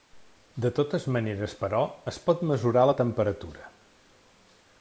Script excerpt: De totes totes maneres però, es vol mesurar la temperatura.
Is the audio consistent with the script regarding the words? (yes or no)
no